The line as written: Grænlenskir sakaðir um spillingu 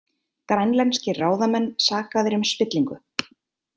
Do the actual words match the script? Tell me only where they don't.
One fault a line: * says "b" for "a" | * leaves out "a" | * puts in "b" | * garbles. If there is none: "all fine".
* puts in "ráðamenn"